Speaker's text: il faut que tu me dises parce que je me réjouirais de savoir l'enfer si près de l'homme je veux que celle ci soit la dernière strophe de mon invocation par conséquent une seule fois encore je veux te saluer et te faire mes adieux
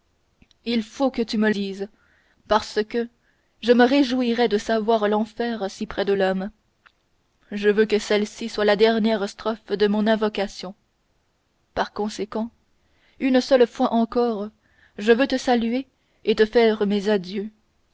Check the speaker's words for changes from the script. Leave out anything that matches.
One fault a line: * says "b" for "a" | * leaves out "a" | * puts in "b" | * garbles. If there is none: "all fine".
all fine